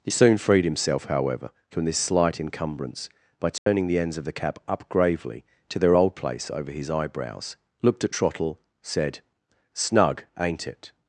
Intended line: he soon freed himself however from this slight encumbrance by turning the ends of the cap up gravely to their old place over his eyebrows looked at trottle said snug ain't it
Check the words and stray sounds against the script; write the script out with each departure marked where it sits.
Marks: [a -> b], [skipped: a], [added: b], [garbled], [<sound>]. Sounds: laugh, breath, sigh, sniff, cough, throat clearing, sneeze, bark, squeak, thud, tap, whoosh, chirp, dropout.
he soon freed himself however from this slight encumbrance by turning [dropout] the ends of the cap up gravely to their old place over his eyebrows looked at trottle said snug ain't it